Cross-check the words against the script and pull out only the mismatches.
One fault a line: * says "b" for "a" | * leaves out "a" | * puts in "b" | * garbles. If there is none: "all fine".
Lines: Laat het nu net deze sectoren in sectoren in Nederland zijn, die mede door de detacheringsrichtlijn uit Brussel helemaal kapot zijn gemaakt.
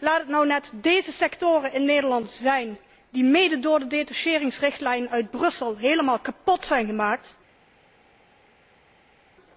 * leaves out "sectoren in"